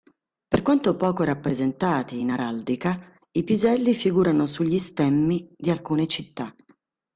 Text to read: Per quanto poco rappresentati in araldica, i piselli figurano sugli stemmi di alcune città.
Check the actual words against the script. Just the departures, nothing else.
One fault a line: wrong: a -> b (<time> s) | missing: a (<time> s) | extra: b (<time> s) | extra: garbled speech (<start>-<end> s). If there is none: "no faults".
no faults